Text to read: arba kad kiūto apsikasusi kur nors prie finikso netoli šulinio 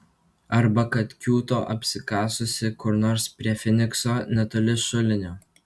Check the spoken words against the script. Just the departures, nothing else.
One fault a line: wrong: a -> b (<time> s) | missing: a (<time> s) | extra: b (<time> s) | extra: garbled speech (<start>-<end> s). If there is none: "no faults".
no faults